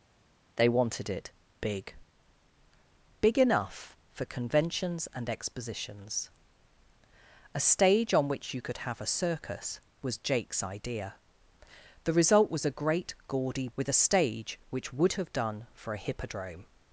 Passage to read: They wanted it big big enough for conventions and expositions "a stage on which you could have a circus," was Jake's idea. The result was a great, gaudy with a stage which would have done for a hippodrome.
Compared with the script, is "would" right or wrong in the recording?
right